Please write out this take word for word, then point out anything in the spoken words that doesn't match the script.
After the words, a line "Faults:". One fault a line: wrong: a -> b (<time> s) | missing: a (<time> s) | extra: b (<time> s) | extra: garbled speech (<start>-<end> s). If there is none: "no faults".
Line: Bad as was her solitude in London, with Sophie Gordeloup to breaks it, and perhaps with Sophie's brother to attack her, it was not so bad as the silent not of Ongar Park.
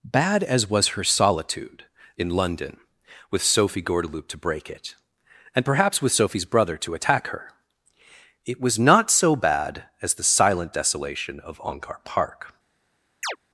Bad as was her solitude in London, with Sophie Gordeloup to break it, and perhaps with Sophie's brother to attack her, it was not so bad as the silent desolation of Ongar Park.
Faults:
wrong: breaks -> break (4.4 s)
wrong: not -> desolation (10.7 s)